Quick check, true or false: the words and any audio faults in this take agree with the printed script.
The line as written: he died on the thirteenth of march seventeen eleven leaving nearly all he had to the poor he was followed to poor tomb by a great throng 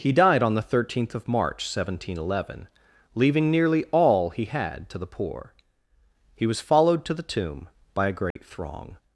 false